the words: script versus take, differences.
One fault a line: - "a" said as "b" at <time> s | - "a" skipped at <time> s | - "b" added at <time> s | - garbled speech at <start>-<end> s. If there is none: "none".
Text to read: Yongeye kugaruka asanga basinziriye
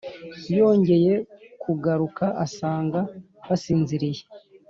none